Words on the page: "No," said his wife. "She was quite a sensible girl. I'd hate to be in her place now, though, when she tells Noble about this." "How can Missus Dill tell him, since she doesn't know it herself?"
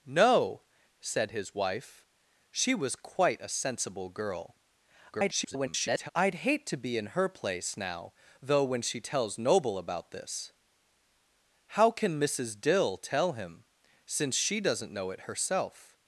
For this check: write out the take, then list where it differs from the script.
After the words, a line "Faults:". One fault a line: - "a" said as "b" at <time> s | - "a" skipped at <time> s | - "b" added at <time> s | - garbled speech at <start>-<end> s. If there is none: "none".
"No," said his wife. "She was quite a sensible girl. [garbled] I'd hate to be in her place now, though, when she tells Noble about this." "How can Missus Dill tell him, since she doesn't know it herself?"
Faults:
- garbled speech at 5.1-6.1 s